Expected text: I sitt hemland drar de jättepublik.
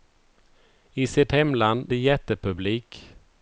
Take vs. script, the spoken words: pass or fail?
fail